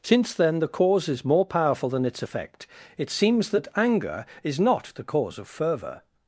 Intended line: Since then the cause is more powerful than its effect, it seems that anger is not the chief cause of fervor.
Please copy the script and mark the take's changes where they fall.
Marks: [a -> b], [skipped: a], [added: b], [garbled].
Since then the cause is more powerful than its effect, it seems that anger is not the [skipped: chief] cause of fervor.